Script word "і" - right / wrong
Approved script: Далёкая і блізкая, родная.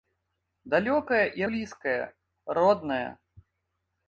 right